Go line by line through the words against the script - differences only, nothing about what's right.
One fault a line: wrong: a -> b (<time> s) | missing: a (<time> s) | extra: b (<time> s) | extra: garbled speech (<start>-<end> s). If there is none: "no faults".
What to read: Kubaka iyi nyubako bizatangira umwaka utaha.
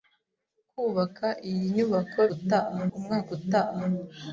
wrong: bizatangira -> utaha (2.4 s)